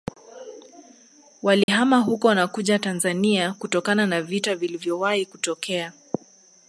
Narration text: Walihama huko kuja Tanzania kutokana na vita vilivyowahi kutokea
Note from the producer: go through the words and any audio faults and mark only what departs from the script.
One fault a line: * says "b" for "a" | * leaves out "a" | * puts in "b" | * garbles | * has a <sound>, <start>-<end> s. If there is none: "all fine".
* has a dropout, 1.6-1.7 s
* puts in "na"